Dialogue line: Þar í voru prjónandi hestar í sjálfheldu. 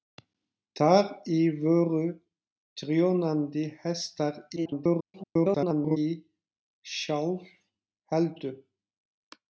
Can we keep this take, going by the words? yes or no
no